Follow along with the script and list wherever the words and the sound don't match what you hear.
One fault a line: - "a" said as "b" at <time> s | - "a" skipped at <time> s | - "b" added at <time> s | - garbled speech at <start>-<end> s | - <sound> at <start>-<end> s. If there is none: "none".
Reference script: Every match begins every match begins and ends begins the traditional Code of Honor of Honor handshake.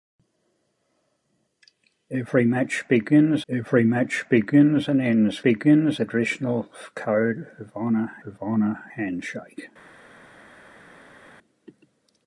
none